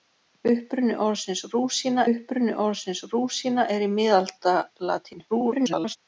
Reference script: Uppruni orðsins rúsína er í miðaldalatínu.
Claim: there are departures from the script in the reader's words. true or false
true